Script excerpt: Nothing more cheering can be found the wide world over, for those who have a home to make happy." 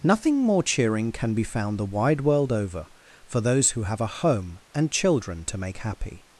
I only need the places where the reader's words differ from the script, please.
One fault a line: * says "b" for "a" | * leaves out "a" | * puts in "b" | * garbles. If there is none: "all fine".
* puts in "and children"